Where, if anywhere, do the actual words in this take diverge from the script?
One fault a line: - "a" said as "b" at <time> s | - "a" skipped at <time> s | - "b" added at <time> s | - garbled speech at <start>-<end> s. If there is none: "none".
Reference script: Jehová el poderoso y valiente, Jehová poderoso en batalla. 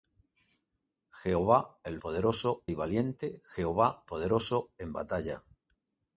none